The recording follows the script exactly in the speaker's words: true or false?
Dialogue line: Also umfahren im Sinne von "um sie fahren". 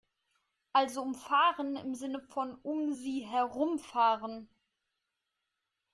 false